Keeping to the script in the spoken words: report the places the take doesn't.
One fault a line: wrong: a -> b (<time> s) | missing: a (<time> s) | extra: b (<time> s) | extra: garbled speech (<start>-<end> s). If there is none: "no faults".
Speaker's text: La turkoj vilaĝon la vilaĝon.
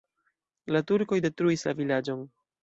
wrong: vilaĝon -> detruis (1.2 s)